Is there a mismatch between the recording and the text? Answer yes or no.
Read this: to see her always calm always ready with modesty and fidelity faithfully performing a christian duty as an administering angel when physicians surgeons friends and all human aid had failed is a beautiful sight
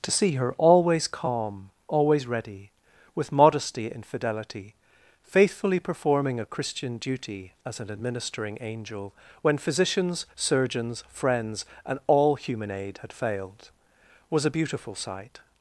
yes